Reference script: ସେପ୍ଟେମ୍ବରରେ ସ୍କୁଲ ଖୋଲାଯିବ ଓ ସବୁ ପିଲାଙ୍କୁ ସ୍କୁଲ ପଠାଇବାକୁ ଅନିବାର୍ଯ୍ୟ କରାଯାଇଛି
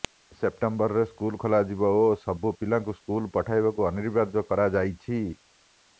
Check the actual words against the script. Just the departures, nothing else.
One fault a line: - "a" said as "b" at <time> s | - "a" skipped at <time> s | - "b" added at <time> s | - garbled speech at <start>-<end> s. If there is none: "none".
none